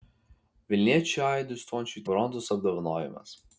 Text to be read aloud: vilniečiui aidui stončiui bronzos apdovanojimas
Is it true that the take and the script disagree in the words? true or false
false